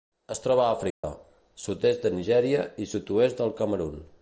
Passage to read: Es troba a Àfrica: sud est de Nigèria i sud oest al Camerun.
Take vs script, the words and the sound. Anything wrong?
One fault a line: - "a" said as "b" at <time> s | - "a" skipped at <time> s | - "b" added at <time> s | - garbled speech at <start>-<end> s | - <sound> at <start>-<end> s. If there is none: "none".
- dropout at 0.9-1.0 s
- "al" said as "del" at 3.4 s